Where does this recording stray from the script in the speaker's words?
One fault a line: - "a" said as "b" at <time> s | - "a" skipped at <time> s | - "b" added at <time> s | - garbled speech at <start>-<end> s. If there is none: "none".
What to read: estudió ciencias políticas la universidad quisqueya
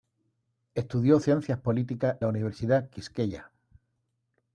none